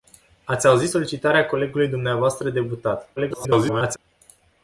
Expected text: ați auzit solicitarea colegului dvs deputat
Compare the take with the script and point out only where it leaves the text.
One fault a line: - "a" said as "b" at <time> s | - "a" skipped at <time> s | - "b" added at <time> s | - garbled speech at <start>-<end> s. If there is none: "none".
- garbled speech at 3.2-4.0 s